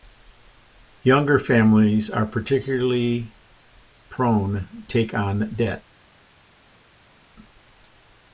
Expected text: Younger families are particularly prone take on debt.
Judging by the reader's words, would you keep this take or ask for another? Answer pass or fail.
pass